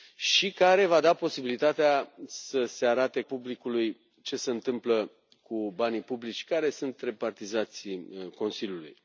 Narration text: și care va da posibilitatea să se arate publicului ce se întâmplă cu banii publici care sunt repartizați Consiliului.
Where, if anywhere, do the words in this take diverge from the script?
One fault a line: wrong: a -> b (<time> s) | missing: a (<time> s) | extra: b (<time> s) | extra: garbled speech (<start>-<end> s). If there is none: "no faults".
no faults